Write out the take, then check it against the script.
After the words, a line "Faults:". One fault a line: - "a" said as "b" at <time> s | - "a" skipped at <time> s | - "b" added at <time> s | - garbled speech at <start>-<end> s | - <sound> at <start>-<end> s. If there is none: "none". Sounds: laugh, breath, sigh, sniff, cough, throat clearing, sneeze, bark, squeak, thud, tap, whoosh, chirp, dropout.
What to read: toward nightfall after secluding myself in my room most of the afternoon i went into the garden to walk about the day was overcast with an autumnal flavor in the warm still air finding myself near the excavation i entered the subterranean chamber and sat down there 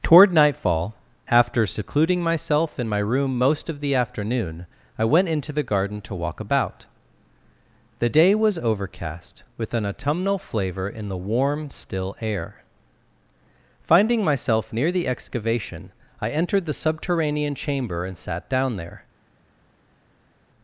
toward nightfall after secluding myself in my room most of the afternoon i went into the garden to walk about the day was overcast with an autumnal flavor in the warm still air finding myself near the excavation i entered the subterranean chamber and sat down there
Faults:
none